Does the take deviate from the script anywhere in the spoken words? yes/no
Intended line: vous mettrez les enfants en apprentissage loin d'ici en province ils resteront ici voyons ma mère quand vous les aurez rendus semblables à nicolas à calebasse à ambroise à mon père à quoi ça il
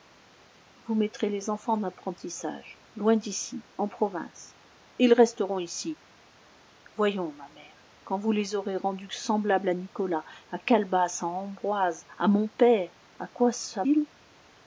no